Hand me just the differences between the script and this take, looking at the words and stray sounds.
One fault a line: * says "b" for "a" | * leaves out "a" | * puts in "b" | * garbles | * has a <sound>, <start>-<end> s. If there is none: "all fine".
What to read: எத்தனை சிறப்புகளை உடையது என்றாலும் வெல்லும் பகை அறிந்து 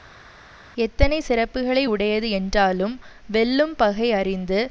all fine